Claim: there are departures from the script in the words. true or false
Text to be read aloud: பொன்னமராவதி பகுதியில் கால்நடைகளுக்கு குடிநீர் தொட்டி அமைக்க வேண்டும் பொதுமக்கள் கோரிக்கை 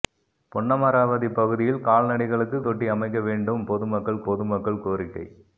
true